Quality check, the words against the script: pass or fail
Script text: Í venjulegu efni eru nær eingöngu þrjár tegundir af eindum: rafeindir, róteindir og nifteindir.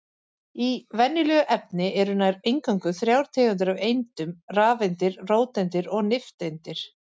pass